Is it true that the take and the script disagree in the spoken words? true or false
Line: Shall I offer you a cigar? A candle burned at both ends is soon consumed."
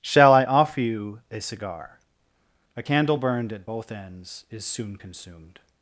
false